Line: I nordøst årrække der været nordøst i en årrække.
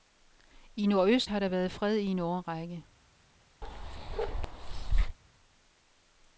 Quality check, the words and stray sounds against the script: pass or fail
fail